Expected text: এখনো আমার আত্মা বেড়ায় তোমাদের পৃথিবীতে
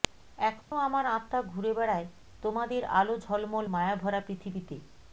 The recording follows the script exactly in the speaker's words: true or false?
false